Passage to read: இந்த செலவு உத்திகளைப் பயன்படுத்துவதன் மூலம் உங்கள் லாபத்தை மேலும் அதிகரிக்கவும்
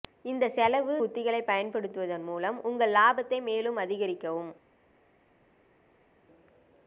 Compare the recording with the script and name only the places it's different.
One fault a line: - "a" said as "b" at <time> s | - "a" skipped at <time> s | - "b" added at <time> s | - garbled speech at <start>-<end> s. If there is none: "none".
none